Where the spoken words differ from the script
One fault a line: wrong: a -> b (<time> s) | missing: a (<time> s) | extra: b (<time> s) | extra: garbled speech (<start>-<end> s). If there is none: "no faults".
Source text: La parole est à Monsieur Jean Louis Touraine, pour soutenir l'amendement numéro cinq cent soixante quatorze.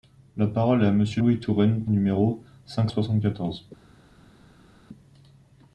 missing: Jean (1.2 s)
missing: pour soutenir l'amendement (1.9 s)
missing: cent (2.9 s)